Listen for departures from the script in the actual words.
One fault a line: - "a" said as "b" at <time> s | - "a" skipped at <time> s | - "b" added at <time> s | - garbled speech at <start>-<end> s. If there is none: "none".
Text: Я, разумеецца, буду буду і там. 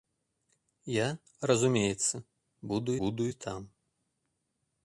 none